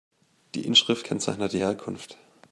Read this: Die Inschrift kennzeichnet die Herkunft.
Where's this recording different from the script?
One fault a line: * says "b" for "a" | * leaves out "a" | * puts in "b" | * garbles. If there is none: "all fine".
all fine